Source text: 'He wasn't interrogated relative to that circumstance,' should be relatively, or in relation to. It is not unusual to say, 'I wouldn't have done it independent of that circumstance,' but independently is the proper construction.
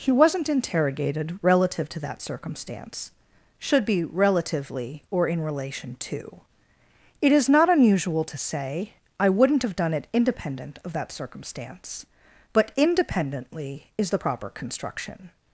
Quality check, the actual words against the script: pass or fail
pass